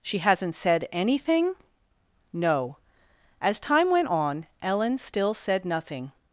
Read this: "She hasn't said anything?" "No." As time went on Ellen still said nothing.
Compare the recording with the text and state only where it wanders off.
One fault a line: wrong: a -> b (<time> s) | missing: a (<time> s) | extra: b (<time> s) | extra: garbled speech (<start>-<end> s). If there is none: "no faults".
no faults